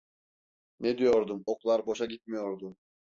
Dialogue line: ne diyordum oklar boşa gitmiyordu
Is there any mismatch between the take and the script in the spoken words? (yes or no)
no